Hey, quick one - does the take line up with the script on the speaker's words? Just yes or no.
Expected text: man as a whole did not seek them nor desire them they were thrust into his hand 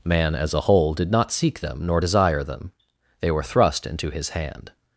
yes